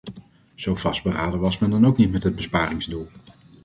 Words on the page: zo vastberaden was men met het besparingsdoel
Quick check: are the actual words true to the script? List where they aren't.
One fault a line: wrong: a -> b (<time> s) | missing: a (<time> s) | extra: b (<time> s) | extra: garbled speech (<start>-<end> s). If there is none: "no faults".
extra: dan ook niet (1.7 s)